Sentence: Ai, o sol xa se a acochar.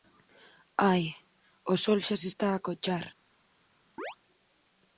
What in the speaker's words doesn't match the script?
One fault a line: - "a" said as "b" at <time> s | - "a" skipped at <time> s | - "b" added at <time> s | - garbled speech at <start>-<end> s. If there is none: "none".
- "está" added at 2.3 s